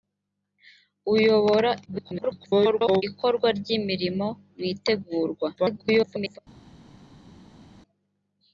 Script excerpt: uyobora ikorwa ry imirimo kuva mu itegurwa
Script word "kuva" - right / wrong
wrong